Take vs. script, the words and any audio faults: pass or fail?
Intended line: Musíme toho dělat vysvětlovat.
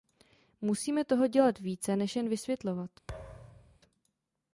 fail